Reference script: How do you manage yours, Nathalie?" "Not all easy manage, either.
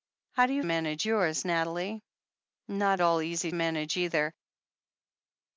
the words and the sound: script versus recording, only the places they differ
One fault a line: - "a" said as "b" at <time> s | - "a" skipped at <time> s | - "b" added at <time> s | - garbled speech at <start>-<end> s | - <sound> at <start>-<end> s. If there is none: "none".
none